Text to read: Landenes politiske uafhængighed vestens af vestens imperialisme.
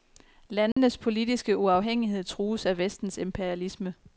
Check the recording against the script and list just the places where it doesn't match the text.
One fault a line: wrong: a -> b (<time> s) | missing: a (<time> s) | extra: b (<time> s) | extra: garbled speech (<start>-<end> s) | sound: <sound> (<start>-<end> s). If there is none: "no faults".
sound: dropout (0.7-0.8 s)
wrong: vestens -> trues (2.2 s)